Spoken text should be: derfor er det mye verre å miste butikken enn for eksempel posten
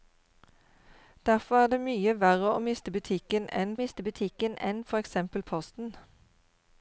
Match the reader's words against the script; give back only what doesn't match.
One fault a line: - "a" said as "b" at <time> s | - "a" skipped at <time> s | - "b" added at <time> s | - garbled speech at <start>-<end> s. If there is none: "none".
- "miste butikken enn" added at 3.8 s